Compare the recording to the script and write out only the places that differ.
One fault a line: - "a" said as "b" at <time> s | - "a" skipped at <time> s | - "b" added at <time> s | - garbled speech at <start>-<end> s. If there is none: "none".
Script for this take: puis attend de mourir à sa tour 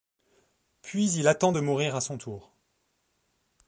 - "il" added at 1.1 s
- "sa" said as "son" at 2.0 s